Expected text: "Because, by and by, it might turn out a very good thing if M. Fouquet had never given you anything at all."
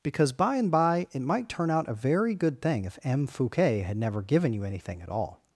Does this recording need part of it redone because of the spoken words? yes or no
no